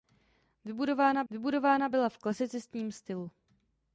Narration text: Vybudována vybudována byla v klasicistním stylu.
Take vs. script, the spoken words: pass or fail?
pass